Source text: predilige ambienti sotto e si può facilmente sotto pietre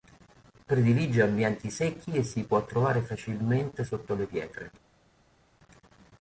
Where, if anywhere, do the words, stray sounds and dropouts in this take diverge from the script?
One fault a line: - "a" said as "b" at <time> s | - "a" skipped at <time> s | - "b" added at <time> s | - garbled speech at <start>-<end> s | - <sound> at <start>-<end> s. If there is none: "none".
- "sotto" said as "secchi" at 1.7 s
- "trovare" added at 2.6 s
- "le" added at 4.1 s